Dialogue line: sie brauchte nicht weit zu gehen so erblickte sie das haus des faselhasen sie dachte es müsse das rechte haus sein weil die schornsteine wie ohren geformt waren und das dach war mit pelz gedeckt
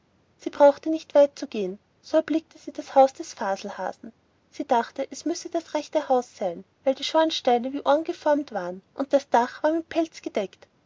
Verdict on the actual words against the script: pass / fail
pass